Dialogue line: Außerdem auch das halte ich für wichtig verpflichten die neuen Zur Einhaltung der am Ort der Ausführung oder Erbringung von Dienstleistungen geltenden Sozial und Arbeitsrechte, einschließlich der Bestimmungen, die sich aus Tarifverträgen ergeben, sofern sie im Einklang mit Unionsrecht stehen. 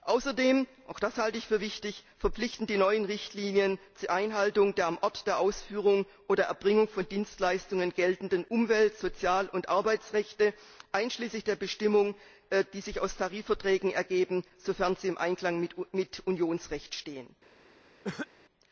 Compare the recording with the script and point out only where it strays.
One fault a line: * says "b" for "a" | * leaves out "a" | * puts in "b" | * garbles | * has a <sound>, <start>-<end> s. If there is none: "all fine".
* puts in "Richtlinien"
* puts in "Umwelt"
* has a cough, 18.0-18.3 s